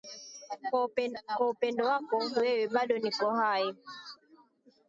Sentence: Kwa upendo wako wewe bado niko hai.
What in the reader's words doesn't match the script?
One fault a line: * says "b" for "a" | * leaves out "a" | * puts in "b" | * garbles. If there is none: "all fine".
all fine